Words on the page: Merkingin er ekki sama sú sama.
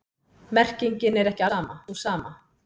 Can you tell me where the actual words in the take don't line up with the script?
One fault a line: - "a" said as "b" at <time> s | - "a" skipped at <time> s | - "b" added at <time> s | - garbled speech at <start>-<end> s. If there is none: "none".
none